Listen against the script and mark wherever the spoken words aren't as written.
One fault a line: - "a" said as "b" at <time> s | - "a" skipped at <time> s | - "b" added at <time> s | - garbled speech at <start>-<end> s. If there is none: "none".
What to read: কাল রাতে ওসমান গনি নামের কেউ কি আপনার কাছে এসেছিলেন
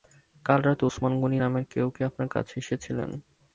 none